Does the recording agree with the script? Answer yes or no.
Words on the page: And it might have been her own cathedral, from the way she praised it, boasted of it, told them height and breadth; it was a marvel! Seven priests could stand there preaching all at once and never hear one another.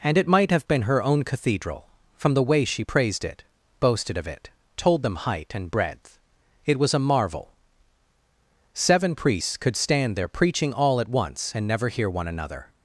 yes